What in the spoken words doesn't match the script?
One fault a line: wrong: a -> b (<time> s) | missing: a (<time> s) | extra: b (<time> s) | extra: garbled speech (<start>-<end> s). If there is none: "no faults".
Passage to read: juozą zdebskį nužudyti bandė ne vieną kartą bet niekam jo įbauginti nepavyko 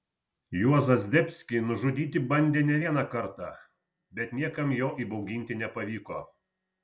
no faults